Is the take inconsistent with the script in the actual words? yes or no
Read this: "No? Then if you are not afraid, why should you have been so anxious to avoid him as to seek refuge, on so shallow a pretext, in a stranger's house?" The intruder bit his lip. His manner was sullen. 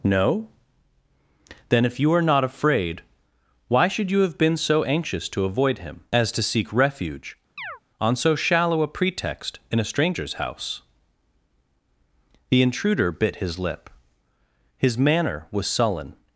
no